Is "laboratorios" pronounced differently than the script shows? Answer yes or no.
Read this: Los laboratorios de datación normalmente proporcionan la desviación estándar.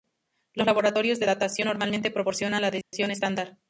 no